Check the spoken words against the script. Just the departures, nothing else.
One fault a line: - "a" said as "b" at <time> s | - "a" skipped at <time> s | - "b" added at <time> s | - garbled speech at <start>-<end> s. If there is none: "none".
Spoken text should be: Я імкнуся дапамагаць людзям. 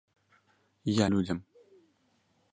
- "імкнуся дапамагаць" skipped at 1.1 s